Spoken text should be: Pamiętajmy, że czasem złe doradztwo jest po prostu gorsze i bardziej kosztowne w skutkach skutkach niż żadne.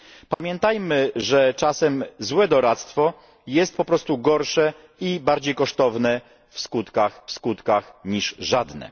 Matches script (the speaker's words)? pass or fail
pass